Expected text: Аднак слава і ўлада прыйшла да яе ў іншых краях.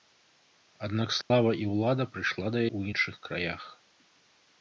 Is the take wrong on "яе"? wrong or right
wrong